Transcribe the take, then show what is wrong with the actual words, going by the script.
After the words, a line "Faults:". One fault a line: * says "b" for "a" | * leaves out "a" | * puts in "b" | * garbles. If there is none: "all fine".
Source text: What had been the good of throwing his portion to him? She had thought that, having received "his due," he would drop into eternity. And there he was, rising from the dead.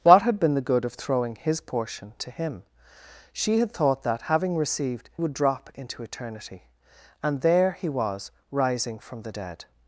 What had been the good of throwing his portion to him? She had thought that, having received "would drop into eternity. And there he was, rising from the dead.
Faults:
* leaves out "his due he"